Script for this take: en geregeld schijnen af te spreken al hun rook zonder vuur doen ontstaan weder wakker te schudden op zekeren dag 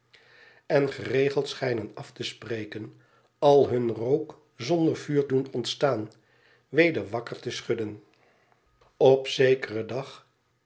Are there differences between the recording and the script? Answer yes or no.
no